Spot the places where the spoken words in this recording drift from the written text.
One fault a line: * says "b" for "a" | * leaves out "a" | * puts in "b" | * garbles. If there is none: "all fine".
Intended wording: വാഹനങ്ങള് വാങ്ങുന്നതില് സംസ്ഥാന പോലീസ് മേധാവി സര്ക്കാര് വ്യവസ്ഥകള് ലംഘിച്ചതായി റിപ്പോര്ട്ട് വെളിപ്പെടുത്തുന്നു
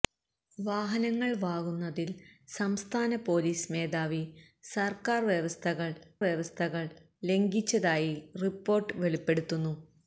* puts in "വ്യവസ്ഥകള്"